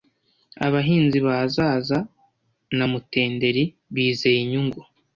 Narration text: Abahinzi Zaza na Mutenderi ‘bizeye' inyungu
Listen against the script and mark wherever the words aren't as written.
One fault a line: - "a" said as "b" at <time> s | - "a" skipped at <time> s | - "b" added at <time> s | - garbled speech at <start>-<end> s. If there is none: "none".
- "ba" added at 1.2 s